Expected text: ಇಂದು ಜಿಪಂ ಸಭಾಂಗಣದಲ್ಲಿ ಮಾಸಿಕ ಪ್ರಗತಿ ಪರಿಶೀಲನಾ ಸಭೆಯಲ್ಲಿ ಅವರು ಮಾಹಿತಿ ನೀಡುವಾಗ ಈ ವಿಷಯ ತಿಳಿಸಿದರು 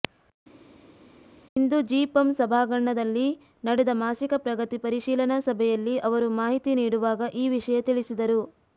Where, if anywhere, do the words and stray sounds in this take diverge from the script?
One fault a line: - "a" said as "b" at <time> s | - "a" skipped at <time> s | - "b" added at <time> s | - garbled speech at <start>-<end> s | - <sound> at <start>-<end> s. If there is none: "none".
- "ನಡೆದ" added at 3.6 s